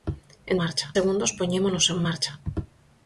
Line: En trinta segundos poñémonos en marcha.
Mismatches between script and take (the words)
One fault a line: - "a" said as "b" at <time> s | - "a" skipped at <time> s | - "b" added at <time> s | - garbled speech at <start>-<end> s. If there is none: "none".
- "trinta" said as "marcha" at 0.6 s